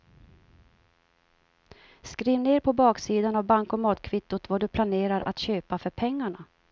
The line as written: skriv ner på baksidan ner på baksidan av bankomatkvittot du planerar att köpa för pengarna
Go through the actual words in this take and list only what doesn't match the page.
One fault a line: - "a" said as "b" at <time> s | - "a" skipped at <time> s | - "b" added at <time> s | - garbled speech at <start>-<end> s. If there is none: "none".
- "ner på baksidan" skipped at 3.3 s
- "vad" added at 4.5 s